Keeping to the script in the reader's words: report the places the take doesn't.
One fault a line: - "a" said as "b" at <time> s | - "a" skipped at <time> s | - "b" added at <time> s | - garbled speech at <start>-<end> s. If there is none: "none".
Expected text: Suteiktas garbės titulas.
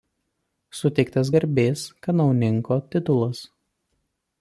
- "kanauninko" added at 2.1 s